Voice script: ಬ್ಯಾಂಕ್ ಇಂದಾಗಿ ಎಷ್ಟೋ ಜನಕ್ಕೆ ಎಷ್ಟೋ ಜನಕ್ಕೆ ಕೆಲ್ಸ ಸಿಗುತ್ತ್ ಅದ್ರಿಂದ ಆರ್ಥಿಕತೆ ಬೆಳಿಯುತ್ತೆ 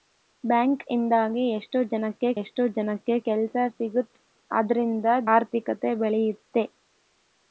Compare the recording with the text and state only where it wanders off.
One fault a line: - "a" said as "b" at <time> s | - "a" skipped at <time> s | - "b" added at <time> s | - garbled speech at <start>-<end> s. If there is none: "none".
none